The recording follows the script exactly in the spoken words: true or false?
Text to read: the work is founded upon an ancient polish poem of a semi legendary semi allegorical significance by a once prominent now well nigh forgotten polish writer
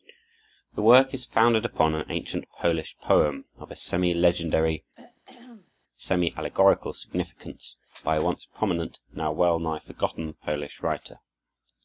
true